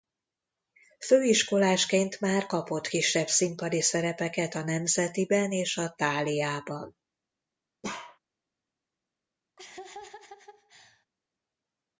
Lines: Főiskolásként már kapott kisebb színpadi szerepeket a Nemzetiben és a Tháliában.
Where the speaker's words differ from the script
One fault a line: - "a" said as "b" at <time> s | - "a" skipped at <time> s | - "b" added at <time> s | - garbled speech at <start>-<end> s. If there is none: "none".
none